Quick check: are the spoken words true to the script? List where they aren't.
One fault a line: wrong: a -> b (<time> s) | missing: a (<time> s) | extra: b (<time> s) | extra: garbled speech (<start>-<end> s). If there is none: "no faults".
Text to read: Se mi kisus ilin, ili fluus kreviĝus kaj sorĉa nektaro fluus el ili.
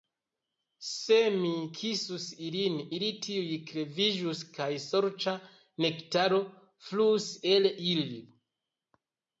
wrong: fluus -> tuj (3.3 s)